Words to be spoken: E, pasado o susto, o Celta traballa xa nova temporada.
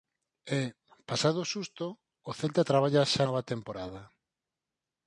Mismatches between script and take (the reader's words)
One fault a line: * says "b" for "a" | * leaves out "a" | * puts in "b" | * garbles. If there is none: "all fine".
all fine